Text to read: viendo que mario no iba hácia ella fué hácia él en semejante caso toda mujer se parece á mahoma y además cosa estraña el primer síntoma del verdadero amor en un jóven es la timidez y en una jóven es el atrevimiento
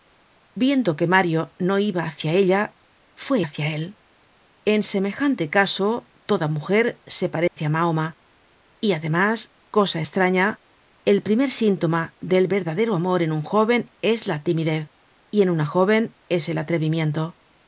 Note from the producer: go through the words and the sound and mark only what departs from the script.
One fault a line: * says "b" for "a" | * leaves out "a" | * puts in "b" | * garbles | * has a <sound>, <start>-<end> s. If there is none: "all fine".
* has a dropout, 7.5-7.6 s